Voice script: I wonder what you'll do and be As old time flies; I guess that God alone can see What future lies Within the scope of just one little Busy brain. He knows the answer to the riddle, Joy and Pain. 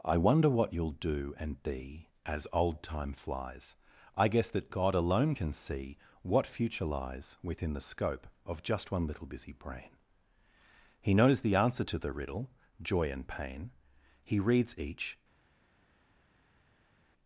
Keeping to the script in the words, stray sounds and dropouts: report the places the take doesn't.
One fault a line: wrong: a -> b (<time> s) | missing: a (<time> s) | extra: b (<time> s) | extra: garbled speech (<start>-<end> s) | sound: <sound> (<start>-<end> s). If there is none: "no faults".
extra: He reads each (14.2 s)